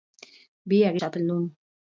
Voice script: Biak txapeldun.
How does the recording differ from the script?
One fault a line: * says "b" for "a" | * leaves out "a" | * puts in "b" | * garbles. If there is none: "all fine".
all fine